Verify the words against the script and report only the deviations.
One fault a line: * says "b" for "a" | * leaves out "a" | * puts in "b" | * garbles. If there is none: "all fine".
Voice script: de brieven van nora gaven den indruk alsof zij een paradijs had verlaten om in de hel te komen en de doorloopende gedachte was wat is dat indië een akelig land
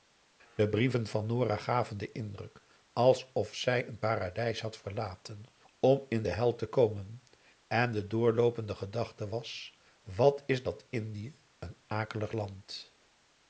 all fine